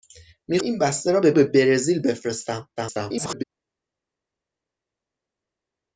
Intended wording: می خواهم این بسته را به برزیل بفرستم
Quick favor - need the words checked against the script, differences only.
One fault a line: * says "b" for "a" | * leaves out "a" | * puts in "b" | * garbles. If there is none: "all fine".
* leaves out "خواهم"
* puts in "به"
* garbles